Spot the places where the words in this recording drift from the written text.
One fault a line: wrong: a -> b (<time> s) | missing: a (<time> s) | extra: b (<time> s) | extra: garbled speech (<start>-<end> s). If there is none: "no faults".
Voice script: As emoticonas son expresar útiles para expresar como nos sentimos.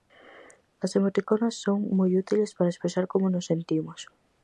wrong: expresar -> moi (2.0 s)